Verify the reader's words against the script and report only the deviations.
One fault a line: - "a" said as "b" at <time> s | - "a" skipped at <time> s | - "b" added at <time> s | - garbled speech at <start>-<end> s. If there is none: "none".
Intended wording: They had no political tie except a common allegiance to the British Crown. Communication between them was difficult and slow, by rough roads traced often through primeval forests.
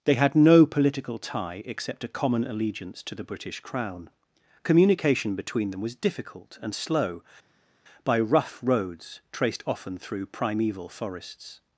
none